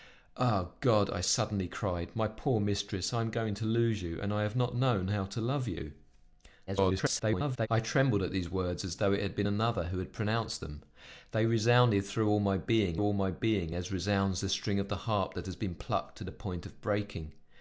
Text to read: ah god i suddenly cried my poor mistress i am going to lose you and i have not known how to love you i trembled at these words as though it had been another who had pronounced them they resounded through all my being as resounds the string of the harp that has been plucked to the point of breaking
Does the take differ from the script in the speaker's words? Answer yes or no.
yes